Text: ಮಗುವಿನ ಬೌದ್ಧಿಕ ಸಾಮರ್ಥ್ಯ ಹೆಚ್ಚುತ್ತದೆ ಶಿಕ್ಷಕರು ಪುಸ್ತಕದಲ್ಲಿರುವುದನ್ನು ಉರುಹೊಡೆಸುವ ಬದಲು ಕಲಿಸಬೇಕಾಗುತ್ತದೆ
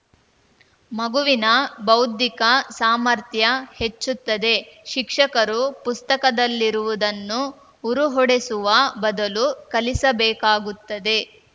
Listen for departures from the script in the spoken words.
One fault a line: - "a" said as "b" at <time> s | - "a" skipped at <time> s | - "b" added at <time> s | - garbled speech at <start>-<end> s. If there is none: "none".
none